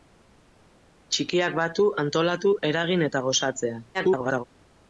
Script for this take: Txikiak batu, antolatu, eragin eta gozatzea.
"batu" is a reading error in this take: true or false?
false